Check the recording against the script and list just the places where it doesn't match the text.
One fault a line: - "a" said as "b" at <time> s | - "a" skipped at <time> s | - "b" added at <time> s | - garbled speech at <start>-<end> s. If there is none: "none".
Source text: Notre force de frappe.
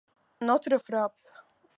- "force de" skipped at 0.8 s